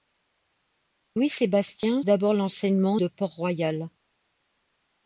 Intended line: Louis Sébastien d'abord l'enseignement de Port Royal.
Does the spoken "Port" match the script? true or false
true